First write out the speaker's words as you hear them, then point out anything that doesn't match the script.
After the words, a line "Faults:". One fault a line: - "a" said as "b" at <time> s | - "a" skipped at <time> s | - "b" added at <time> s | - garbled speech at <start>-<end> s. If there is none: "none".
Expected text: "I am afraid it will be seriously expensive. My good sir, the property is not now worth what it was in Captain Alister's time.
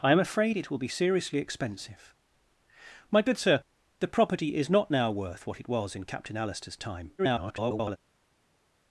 "I am afraid it will be seriously expensive. My good sir, the property is not now worth what it was in Captain Alister's time. [garbled]
Faults:
- garbled speech at 7.2-8.0 s